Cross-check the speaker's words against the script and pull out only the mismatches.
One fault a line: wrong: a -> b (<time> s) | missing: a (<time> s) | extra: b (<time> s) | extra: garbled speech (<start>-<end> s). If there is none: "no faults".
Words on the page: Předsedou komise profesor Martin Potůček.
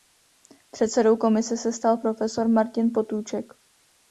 extra: se stal (1.6 s)